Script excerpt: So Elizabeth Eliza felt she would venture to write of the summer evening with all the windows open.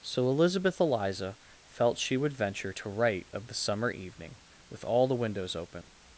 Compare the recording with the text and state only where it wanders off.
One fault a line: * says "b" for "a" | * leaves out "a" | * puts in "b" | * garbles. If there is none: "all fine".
all fine